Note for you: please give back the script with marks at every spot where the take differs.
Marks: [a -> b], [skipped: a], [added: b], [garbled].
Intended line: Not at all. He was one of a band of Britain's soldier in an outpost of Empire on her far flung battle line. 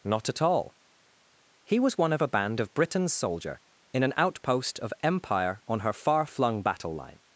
Not at all. He was one of a band of Britain's soldier in an outpost of Empire on her far flung battle line.